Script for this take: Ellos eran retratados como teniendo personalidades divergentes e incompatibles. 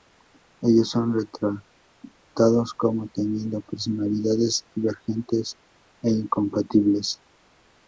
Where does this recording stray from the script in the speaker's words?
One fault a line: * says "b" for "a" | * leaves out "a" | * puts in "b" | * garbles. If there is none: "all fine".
* says "son" for "eran"